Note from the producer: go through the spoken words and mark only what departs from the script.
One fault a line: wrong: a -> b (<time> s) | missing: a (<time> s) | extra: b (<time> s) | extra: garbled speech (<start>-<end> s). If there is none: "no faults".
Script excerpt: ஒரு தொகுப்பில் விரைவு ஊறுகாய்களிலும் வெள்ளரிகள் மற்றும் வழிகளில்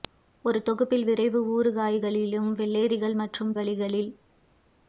no faults